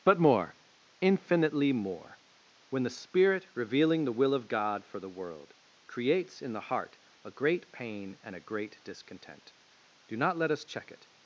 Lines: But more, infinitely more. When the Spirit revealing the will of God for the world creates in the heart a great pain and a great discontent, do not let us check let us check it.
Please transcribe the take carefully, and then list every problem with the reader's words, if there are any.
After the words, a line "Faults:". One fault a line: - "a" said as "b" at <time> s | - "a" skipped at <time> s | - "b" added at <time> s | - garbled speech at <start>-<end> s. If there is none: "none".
But more, infinitely more. When the Spirit revealing the will of God for the world creates in the heart a great pain and a great discontent, do not let us check it.
Faults:
- "let us check" skipped at 10.9 s